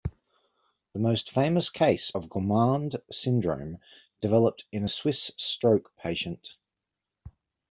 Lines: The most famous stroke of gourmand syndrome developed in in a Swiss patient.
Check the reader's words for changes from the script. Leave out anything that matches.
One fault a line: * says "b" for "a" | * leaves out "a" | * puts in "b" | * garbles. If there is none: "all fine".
* says "case" for "stroke"
* leaves out "in"
* puts in "stroke"